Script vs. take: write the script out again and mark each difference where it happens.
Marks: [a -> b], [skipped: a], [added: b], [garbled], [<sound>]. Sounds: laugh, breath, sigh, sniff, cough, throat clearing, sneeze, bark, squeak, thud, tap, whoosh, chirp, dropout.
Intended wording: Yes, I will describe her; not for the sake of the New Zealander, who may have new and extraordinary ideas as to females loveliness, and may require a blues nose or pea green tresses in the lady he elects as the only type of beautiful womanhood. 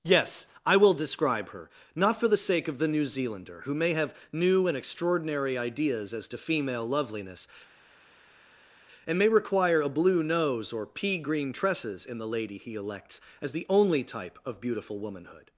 Yes, I will describe her; not for the sake of the New Zealander, who may have new and extraordinary ideas as to [females -> female] loveliness, and may require a [blues -> blue] nose or pea green tresses in the lady he elects as the only type of beautiful womanhood.